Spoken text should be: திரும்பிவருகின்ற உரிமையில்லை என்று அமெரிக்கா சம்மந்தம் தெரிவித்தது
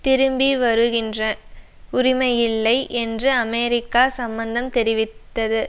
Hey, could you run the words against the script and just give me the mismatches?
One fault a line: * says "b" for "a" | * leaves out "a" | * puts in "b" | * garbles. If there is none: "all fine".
all fine